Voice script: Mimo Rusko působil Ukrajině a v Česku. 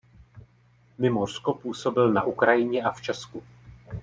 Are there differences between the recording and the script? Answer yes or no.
yes